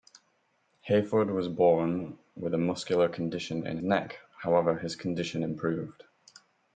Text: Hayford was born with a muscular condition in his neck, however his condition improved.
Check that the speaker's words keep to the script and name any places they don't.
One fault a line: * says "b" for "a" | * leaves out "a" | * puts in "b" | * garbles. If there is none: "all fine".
* leaves out "his"